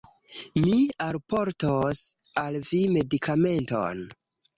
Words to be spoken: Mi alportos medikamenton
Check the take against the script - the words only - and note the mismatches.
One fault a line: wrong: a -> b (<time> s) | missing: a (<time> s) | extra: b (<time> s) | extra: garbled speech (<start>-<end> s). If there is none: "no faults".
extra: al vi (2.5 s)